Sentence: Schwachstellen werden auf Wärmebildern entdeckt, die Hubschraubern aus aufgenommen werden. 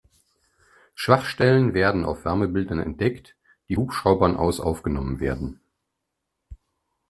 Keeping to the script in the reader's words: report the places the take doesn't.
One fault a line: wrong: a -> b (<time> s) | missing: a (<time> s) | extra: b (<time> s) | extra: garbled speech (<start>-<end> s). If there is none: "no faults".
no faults